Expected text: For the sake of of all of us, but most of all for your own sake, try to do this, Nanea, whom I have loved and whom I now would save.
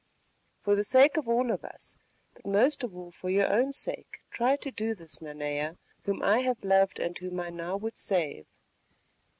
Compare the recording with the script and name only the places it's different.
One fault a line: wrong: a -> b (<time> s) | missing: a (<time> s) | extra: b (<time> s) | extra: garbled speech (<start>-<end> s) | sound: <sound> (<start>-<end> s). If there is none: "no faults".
missing: of (1.3 s)